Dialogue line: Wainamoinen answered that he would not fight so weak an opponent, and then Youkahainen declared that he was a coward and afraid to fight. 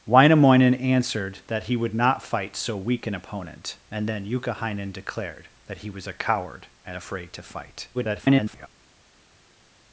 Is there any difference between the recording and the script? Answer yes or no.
yes